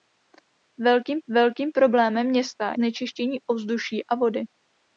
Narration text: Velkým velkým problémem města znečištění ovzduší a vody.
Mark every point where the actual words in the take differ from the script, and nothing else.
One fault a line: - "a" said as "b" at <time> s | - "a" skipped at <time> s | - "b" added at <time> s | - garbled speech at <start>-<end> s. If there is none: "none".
none